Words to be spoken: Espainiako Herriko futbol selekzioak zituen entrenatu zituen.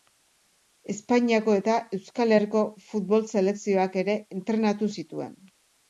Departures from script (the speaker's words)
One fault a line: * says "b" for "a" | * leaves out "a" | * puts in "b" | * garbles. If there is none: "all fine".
* puts in "eta Euskal"
* says "ere" for "zituen"